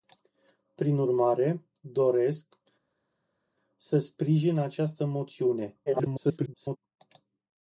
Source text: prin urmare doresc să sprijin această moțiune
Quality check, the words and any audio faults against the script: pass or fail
fail